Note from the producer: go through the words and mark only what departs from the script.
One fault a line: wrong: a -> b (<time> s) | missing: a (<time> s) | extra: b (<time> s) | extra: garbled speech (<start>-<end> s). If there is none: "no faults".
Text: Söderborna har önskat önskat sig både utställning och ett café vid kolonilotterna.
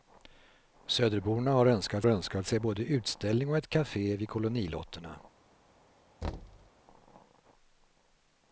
no faults